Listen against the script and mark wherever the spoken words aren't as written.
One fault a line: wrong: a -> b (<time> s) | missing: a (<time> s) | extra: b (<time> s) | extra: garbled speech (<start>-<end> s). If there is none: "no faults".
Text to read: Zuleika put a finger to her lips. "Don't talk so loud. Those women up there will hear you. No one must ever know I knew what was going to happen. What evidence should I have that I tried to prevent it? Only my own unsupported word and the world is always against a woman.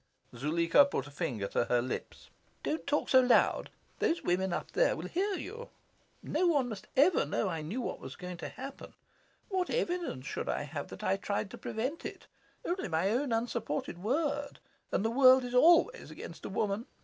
no faults